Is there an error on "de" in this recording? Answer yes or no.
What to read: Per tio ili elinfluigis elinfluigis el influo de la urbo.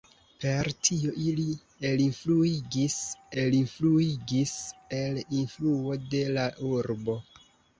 no